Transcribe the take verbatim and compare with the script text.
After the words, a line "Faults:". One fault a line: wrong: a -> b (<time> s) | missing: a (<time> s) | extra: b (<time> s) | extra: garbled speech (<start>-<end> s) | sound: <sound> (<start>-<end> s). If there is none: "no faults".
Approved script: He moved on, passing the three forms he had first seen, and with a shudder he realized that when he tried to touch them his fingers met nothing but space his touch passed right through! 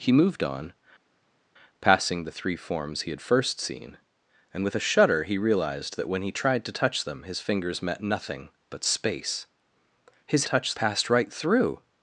He moved on, passing the three forms he had first seen, and with a shudder he realized that when he tried to touch them his fingers met nothing but space his touch passed right through!
Faults:
no faults